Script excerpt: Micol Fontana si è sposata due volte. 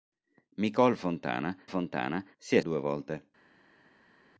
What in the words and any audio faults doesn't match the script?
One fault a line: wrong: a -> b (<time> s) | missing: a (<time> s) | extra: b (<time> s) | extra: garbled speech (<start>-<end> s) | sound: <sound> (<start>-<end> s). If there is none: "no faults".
extra: Fontana (1.7 s)
missing: sposata (2.6 s)